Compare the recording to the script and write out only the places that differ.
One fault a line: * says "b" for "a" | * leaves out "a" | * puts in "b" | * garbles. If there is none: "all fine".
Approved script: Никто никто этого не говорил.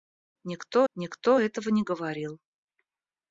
all fine